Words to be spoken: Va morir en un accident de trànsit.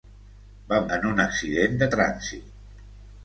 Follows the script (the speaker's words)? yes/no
no